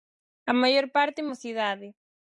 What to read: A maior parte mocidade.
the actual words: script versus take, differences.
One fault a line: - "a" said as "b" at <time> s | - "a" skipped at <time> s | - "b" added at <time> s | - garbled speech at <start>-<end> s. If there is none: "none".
none